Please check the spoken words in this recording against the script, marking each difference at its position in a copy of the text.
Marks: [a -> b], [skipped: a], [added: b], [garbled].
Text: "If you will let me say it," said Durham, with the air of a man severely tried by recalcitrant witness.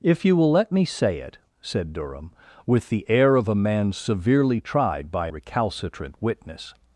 "If you will let me say it," said Durham, with the air of a man severely tried by recalcitrant witness.